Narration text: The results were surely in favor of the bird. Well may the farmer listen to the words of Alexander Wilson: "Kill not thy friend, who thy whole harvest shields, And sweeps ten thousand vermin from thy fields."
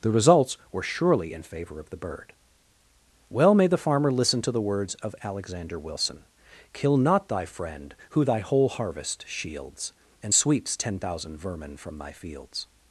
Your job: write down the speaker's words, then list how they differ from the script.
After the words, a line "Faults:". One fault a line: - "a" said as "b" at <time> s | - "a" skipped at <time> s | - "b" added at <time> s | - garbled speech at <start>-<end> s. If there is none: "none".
The results were surely in favor of the bird. Well may the farmer listen to the words of Alexander Wilson: "Kill not thy friend, who thy whole harvest shields, And sweeps ten thousand vermin from thy fields."
Faults:
none